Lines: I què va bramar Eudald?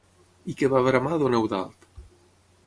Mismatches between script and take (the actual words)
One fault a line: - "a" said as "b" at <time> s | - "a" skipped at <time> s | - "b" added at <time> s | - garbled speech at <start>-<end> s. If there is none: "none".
- "don" added at 1.2 s